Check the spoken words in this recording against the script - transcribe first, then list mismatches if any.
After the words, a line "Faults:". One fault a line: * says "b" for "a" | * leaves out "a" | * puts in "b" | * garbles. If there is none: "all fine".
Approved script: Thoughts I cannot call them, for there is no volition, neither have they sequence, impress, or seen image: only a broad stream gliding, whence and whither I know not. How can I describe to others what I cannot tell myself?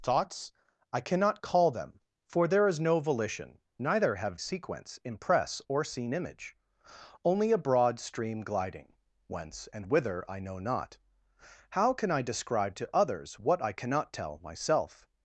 Thoughts I cannot call them, for there is no volition, neither have sequence, impress, or seen image: only a broad stream gliding, whence and whither I know not. How can I describe to others what I cannot tell myself?
Faults:
* leaves out "they"